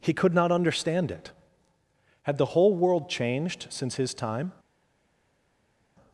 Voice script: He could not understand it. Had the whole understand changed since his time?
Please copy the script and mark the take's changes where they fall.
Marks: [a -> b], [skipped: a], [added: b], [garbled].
He could not understand it. Had the whole [understand -> world] changed since his time?